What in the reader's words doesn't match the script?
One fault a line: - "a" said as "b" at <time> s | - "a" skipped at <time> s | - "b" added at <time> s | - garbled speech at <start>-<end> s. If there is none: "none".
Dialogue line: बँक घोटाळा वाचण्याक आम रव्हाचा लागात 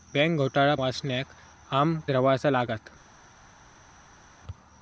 none